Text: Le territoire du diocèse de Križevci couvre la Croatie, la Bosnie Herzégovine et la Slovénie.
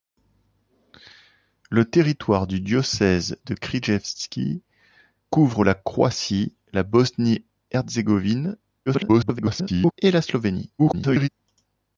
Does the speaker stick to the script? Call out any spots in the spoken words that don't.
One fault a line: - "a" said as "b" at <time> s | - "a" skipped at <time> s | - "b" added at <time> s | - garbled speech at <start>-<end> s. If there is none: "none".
- garbled speech at 8.9-9.9 s
- garbled speech at 10.8-11.3 s